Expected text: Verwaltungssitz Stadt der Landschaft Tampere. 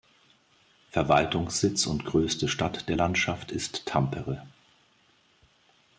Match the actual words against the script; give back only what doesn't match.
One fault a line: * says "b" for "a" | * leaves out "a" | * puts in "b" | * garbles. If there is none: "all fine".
* puts in "und größte"
* puts in "ist"